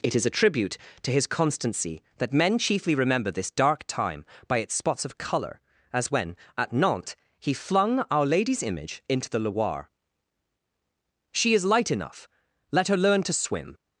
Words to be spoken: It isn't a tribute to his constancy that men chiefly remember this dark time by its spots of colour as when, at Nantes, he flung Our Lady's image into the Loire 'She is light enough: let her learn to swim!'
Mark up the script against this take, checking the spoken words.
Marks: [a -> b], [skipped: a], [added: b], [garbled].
It [isn't -> is] a tribute to his constancy that men chiefly remember this dark time by its spots of colour as when, at Nantes, he flung Our Lady's image into the Loire 'She is light enough: let her learn to swim!'